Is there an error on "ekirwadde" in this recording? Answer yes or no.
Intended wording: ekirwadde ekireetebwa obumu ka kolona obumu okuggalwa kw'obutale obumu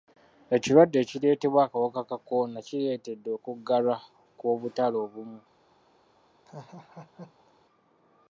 no